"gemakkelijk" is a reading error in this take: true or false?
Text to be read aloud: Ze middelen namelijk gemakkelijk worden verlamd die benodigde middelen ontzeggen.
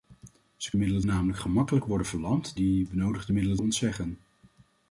false